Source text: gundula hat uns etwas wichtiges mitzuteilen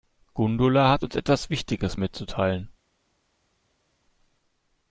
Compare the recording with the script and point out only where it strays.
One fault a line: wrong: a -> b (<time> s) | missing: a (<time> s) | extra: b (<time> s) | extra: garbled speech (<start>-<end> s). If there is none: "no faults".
no faults